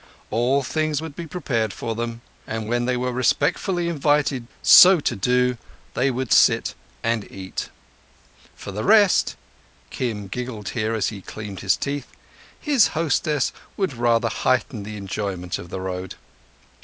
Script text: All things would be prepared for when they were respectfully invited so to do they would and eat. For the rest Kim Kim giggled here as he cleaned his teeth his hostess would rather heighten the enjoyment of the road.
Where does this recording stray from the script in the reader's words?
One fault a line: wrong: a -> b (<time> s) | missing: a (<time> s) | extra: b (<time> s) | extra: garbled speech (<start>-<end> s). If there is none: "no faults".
extra: them and (1.9 s)
extra: sit (6.3 s)
missing: Kim (10.3 s)